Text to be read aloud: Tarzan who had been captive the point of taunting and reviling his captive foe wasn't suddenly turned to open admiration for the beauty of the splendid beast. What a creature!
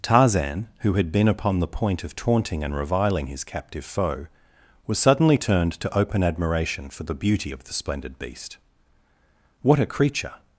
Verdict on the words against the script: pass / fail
fail